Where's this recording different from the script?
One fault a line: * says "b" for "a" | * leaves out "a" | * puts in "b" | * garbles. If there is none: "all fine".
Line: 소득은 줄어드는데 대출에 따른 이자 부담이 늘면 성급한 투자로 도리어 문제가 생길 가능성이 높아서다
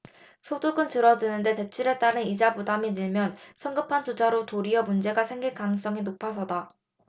all fine